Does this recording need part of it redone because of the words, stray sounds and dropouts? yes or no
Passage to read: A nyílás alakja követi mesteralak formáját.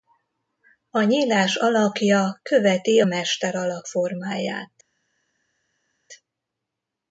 no